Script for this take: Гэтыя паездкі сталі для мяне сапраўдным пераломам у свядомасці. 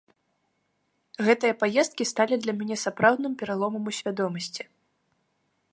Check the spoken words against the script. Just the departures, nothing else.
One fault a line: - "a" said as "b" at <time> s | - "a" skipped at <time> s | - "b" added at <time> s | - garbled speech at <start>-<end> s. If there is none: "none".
none